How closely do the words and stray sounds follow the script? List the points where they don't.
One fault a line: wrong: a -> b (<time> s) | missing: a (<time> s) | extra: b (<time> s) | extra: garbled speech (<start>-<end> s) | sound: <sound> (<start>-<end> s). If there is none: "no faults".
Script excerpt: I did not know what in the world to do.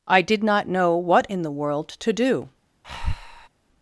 sound: breath (2.8-3.5 s)